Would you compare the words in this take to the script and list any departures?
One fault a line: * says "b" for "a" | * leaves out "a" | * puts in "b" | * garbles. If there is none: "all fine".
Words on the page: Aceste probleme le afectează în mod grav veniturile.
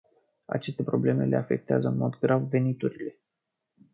all fine